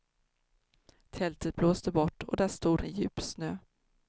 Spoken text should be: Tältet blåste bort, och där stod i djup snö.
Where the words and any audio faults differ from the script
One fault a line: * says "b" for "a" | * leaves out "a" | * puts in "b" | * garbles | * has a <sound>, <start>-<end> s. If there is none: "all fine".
all fine